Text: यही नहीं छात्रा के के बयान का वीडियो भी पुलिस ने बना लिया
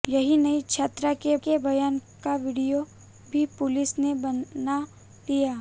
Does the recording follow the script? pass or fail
pass